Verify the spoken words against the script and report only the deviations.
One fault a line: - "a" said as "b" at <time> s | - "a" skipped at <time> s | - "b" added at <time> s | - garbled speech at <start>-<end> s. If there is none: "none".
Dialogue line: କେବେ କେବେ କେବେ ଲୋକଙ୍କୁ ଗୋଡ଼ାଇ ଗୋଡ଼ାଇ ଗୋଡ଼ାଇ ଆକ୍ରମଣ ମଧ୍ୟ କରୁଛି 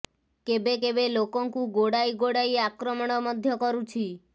- "କେବେ" skipped at 1.1 s
- "ଗୋଡ଼ାଇ" skipped at 2.6 s